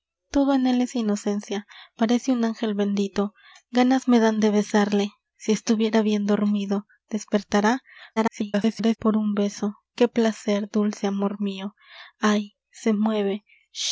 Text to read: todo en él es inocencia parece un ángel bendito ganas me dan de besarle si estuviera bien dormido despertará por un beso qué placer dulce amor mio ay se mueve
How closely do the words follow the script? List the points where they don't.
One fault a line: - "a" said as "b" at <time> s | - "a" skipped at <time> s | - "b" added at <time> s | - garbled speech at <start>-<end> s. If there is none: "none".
- garbled speech at 8.2-9.0 s